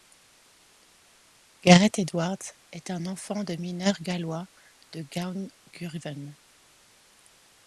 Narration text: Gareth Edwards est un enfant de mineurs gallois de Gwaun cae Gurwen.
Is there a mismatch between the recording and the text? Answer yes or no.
yes